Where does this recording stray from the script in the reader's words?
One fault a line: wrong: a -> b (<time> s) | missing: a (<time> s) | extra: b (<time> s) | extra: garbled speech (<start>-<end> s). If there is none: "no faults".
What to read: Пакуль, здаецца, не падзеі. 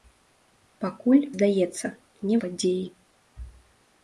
no faults